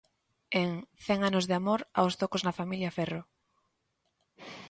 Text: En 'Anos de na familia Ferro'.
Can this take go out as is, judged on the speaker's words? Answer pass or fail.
fail